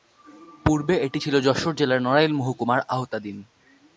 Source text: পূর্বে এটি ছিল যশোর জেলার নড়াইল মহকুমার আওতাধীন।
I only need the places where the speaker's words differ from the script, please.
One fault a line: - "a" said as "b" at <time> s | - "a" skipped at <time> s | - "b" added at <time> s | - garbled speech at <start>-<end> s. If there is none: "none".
none